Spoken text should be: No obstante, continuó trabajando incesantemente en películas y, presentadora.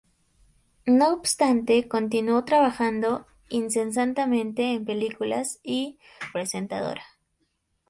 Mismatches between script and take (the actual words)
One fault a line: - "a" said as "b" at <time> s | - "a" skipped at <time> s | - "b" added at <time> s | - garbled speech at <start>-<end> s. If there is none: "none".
none